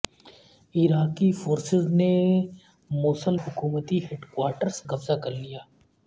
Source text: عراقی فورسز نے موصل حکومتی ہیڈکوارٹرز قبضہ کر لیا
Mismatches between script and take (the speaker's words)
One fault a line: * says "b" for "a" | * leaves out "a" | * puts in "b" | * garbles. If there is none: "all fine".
all fine